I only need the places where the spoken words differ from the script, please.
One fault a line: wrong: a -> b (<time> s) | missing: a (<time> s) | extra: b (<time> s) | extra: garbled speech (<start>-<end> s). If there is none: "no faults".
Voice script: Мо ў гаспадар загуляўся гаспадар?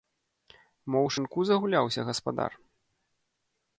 wrong: гаспадар -> шынку (1.1 s)